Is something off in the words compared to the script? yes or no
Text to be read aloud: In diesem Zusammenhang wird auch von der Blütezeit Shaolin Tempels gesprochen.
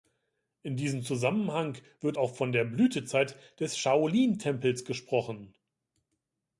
yes